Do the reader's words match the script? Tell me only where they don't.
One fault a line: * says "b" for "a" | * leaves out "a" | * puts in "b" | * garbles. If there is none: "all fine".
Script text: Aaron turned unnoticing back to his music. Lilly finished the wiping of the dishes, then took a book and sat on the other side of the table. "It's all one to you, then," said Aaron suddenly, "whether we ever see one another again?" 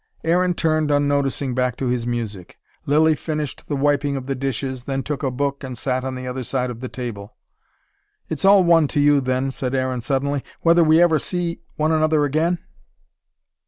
all fine